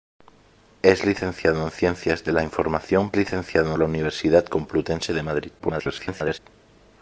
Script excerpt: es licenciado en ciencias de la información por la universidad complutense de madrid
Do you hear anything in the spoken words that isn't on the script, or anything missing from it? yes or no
yes